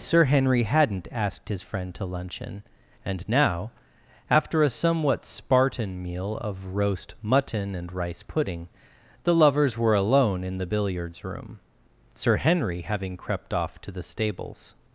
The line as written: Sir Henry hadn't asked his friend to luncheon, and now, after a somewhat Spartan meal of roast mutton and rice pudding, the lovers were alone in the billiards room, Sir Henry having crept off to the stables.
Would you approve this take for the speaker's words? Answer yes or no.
yes